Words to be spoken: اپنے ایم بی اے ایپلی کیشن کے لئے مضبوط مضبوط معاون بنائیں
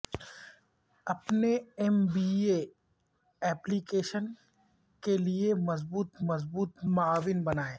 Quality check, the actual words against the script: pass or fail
pass